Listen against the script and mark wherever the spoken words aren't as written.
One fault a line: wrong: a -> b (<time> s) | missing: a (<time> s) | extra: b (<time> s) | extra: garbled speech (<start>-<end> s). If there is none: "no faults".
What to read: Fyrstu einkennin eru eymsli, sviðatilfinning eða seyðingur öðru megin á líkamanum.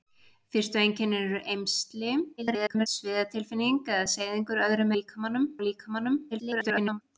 extra: garbled speech (2.4-2.9 s)
wrong: megin -> líkamanum (5.0 s)
extra: garbled speech (6.3-7.0 s)